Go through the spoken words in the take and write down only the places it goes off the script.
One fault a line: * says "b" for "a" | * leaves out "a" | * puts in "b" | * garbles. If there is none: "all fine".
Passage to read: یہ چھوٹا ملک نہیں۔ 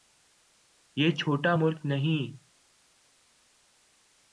all fine